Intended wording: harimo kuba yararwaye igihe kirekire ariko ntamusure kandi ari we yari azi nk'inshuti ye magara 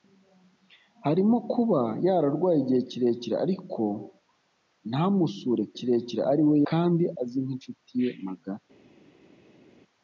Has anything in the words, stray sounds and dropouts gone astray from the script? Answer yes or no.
yes